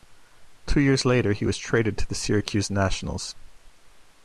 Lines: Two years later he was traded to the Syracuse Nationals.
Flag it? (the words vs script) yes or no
no